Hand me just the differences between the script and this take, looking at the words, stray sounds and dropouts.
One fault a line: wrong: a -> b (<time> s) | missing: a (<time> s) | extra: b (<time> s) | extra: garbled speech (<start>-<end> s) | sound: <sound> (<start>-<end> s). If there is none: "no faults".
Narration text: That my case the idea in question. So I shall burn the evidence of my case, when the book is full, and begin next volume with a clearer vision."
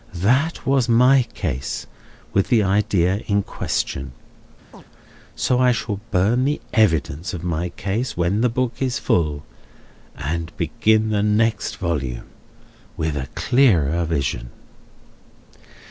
extra: was (0.7 s)
extra: with (2.3 s)
sound: chirp (4.7-4.8 s)
extra: the (11.1 s)